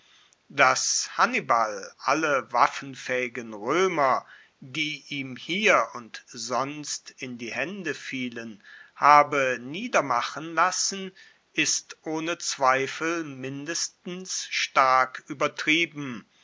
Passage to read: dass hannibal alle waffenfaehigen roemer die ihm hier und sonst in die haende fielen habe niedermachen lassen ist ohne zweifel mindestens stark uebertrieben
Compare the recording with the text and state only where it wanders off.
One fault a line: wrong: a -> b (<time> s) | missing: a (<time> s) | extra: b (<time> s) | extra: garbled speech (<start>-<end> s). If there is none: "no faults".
no faults